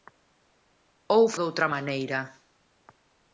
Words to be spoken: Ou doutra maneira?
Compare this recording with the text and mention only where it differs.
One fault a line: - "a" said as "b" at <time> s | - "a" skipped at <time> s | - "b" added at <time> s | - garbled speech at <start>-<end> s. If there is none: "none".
none